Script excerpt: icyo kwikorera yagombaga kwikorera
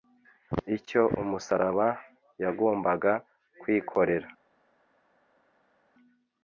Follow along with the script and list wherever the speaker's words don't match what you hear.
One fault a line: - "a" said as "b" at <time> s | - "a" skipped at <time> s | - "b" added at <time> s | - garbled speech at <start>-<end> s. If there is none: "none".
- "kwikorera" said as "umusaraba" at 1.2 s